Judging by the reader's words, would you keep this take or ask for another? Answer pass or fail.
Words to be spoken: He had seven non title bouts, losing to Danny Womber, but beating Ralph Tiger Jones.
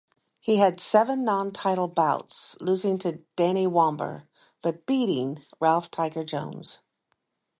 pass